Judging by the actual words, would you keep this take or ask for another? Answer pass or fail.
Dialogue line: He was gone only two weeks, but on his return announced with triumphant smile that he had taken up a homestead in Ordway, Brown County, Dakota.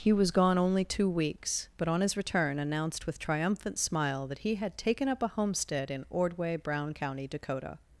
pass